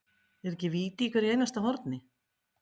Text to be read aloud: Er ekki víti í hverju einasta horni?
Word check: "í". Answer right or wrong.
right